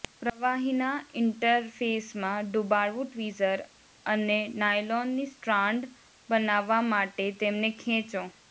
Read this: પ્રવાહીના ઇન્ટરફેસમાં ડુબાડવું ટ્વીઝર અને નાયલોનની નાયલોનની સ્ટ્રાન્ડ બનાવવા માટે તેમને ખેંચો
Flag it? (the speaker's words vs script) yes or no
yes